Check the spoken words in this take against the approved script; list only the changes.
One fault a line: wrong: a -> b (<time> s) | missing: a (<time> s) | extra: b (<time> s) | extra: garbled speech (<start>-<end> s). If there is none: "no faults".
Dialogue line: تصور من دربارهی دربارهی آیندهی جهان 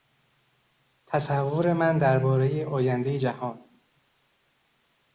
missing: دربارهی (2.6 s)